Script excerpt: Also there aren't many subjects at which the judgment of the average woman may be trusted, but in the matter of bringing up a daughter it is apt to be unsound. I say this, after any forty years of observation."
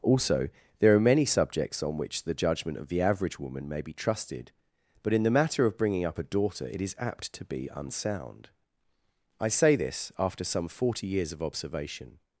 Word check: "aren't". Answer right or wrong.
wrong